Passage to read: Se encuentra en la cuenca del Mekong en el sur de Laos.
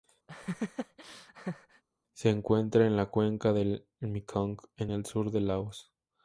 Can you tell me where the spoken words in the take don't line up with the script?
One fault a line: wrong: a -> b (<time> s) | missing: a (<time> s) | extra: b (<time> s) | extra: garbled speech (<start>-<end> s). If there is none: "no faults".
no faults